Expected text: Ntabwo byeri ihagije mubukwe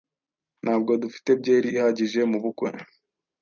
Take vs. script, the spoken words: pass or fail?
fail